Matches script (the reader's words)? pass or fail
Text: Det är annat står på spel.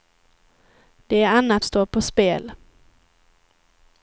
pass